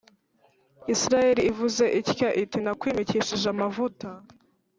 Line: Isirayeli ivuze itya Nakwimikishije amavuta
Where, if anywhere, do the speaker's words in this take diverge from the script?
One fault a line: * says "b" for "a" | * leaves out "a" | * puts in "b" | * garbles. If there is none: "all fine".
* puts in "iti"